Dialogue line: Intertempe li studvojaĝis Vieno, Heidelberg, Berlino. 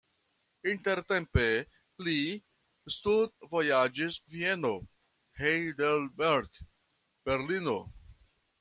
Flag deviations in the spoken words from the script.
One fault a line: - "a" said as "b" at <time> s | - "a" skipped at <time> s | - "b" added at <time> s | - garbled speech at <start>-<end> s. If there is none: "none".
none